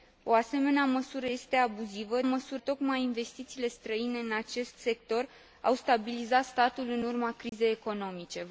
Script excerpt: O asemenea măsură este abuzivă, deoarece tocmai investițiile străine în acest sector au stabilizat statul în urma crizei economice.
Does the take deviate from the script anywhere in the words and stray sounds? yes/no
yes